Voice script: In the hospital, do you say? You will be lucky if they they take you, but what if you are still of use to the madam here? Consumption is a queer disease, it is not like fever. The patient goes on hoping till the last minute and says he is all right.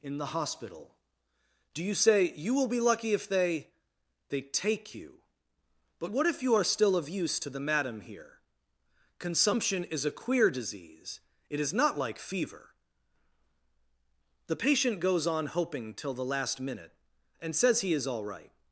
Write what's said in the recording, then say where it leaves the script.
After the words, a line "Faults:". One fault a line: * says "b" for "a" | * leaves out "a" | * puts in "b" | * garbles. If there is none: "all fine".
In the hospital, do you say? You will be lucky if they they take you, but what if you are still of use to the madam here? Consumption is a queer disease, it is not like fever. The patient goes on hoping till the last minute and says he is all right.
Faults:
all fine